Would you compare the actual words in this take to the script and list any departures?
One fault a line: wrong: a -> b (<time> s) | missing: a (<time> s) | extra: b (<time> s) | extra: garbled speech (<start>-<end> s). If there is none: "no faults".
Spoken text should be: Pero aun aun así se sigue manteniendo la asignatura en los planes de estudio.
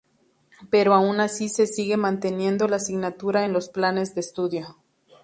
missing: aun (1.2 s)